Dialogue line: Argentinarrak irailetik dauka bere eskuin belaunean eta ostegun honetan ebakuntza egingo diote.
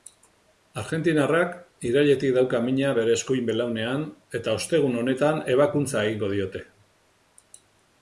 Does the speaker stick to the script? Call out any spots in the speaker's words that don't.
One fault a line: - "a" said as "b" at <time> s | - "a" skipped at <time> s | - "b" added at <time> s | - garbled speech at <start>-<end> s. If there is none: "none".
- "mina" added at 2.7 s